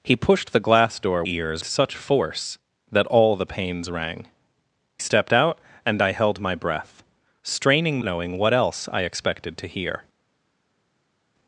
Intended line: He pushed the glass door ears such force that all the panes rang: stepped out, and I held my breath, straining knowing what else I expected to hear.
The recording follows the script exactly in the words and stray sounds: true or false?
true